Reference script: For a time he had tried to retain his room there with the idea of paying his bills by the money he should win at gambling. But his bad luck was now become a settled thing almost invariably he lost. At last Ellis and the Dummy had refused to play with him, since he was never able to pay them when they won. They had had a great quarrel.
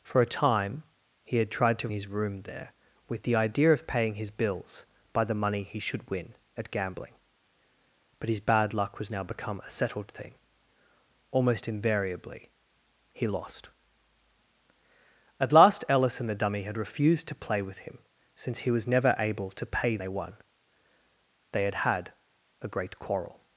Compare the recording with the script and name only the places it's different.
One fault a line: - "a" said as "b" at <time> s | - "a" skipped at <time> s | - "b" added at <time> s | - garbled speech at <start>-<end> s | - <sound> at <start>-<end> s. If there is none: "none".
- "retain" skipped at 1.9 s
- "them when" skipped at 20.0 s